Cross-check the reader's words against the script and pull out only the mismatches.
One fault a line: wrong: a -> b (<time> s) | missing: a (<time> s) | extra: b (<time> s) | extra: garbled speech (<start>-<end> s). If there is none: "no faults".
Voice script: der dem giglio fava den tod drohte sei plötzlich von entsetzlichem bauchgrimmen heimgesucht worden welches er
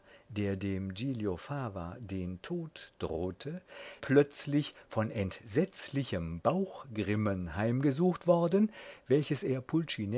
missing: sei (3.6 s)